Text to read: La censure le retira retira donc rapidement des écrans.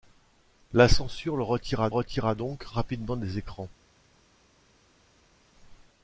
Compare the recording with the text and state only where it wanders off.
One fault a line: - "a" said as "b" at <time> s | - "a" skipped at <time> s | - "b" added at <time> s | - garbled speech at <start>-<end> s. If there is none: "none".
none